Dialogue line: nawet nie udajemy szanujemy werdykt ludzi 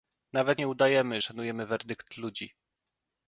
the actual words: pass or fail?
pass